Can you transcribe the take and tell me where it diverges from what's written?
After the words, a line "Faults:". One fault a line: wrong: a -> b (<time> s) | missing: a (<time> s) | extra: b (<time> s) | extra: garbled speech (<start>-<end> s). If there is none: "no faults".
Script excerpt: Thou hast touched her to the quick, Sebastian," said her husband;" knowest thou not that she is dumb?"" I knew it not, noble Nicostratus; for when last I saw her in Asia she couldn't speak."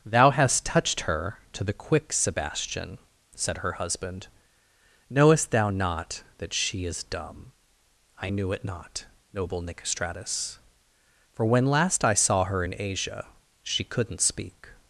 Thou hast touched her to the quick, Sebastian," said her husband;" knowest thou not that she is dumb?"" I knew it not, noble Nicostratus; for when last I saw her in Asia she couldn't speak."
Faults:
no faults